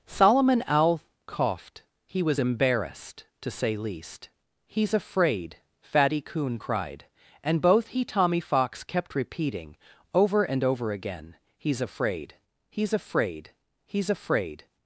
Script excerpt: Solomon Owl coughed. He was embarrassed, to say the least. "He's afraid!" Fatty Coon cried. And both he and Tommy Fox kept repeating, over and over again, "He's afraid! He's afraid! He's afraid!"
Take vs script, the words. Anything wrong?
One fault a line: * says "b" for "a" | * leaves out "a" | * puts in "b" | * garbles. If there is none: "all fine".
* leaves out "the"
* leaves out "and"